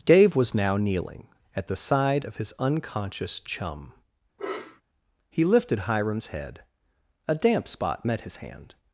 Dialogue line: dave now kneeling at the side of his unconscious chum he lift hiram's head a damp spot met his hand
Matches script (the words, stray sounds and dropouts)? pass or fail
fail